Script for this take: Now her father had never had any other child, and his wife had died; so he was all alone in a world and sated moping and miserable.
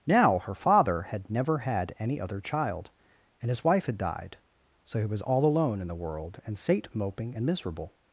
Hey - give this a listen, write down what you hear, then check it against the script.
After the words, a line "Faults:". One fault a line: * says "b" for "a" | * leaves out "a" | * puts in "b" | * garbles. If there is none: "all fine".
Now her father had never had any other child, and his wife had died; so he was all alone in the world and sate moping and miserable.
Faults:
* says "the" for "a"
* says "sate" for "sated"